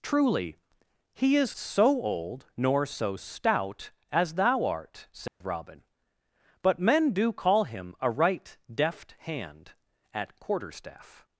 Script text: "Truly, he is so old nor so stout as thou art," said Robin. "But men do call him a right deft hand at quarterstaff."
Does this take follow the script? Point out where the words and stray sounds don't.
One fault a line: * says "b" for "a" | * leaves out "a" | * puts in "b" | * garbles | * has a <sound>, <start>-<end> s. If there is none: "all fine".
* has a dropout, 5.3-5.4 s